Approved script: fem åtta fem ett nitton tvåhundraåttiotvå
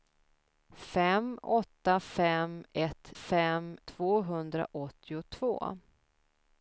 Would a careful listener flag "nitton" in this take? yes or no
yes